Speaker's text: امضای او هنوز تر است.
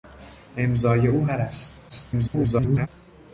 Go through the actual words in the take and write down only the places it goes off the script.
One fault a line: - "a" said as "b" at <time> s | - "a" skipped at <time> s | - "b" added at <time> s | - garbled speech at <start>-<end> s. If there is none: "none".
- "هنوز" skipped at 1.3 s
- garbled speech at 1.9-2.9 s